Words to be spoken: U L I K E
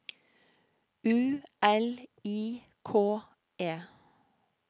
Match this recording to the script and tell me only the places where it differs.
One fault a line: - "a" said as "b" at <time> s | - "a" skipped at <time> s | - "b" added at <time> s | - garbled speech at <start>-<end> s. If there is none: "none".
none